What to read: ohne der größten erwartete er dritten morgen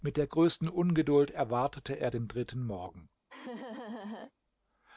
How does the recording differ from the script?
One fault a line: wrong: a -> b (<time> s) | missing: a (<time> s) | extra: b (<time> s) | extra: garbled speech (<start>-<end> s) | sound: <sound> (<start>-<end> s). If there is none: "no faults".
wrong: ohne -> mit (0.0 s)
extra: ungeduld (0.7 s)
extra: den (2.1 s)
sound: laugh (3.3-4.3 s)